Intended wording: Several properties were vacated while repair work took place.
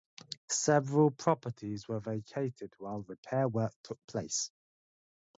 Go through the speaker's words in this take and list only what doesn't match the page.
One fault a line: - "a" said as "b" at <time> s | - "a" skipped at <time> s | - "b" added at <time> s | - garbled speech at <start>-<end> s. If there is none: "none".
none